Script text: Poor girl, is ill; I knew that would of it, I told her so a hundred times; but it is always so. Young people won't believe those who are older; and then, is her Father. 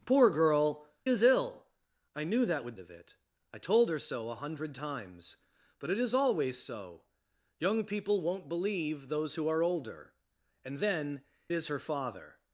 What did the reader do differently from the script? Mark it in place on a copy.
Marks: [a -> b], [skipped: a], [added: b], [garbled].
Poor girl, is ill; I knew that would of it, I told her so a hundred times; but it is always so. Young people won't believe those who are older; and then, is her Father.